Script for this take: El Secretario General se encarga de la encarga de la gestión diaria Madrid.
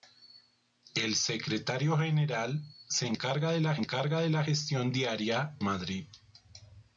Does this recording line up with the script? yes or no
yes